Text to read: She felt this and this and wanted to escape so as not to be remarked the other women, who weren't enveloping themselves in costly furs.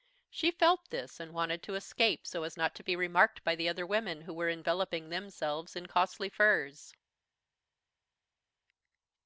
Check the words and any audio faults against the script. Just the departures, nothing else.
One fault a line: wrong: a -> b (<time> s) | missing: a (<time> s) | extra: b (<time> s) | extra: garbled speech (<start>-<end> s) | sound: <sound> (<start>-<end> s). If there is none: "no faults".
missing: this and (1.3 s)
extra: by (3.4 s)
wrong: weren't -> were (4.3 s)